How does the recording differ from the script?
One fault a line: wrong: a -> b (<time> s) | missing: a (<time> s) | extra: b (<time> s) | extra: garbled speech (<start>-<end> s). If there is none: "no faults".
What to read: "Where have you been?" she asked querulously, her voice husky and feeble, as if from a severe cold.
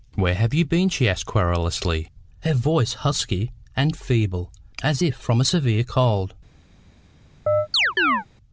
no faults